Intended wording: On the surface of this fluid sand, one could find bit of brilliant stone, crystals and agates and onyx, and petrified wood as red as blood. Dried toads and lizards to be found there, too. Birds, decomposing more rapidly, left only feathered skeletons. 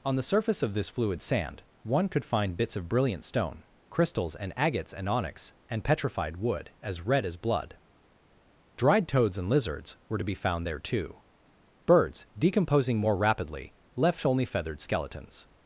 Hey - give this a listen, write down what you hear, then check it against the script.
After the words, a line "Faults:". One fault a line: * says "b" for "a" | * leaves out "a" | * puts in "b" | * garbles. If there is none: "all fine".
On the surface of this fluid sand, one could find bits of brilliant stone, crystals and agates and onyx, and petrified wood as red as blood. Dried toads and lizards were to be found there, too. Birds, decomposing more rapidly, left only feathered skeletons.
Faults:
* says "bits" for "bit"
* puts in "were"